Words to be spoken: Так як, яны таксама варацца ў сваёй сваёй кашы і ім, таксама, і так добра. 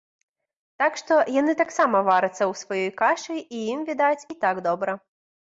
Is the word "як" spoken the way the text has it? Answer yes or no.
no